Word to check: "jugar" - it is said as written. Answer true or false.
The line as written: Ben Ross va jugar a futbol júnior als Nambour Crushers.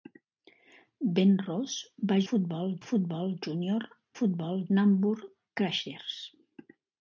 false